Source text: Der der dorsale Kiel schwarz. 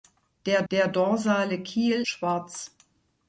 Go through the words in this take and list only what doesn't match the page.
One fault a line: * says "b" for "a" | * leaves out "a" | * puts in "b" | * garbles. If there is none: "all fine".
all fine